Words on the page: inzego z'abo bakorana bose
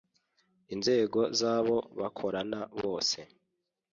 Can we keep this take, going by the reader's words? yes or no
yes